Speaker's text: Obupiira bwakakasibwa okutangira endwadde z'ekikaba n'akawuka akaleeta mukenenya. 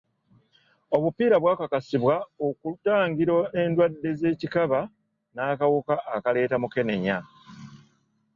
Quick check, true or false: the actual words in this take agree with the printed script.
true